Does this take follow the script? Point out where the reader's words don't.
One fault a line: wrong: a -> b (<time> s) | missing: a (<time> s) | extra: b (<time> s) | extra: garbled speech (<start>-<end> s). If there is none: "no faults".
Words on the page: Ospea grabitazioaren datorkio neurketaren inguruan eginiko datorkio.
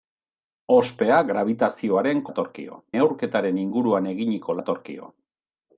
no faults